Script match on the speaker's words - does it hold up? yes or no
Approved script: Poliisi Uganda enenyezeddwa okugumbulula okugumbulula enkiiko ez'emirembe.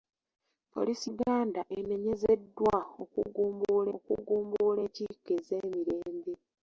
yes